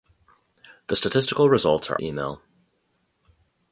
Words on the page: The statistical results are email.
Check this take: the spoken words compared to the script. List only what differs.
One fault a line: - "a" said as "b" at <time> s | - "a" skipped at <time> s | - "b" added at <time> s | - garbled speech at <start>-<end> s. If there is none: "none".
none